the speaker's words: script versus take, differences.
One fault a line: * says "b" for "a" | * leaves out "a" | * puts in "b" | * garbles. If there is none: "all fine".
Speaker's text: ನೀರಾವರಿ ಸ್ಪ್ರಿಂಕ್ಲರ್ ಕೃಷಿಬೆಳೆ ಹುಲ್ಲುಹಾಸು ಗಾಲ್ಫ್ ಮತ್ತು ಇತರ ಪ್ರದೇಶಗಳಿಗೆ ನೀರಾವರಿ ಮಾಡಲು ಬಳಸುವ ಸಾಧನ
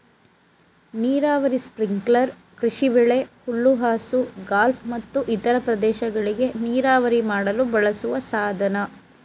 all fine